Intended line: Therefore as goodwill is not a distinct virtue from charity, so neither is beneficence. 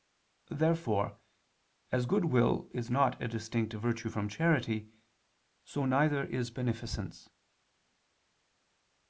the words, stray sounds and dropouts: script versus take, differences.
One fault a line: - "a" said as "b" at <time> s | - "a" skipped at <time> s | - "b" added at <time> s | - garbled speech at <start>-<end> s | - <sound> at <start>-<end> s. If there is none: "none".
none